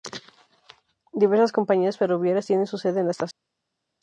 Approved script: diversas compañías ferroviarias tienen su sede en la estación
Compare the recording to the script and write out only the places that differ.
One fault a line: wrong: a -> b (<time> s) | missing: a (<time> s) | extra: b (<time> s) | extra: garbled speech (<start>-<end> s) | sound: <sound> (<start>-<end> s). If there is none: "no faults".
no faults